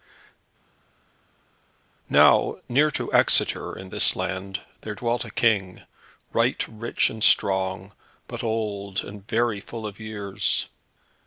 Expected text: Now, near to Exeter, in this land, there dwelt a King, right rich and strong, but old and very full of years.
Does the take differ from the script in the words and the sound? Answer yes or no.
no